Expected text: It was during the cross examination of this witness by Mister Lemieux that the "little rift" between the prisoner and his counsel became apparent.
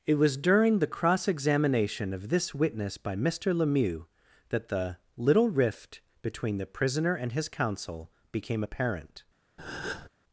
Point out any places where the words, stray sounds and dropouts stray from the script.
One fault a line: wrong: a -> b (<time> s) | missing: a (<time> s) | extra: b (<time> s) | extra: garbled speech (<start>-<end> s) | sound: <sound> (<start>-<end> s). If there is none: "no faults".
sound: breath (9.6-10.1 s)